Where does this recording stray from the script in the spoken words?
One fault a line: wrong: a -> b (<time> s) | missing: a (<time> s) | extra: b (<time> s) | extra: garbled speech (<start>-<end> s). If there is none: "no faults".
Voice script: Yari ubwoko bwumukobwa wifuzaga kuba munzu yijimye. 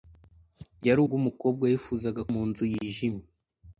missing: ubwoko (1.0 s)
missing: kuba (2.2 s)